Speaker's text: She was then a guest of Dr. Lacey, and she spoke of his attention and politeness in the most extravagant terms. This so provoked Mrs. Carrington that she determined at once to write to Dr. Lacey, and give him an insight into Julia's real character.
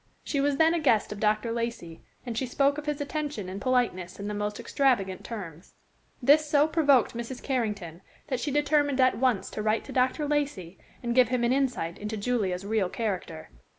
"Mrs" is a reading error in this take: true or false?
false